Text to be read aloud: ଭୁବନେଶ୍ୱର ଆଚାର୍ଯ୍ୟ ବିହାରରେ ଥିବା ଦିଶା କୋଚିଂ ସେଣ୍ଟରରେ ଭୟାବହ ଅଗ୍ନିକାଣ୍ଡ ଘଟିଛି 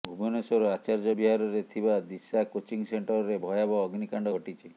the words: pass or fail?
pass